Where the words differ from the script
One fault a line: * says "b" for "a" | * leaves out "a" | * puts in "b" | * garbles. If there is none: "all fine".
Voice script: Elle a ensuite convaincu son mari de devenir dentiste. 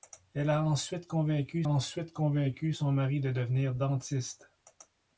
* puts in "ensuite convaincu"